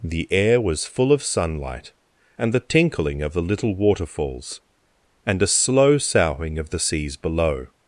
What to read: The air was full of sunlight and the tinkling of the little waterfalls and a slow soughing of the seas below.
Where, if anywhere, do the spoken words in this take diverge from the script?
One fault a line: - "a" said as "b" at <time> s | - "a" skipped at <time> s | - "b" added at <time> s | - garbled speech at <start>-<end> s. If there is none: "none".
none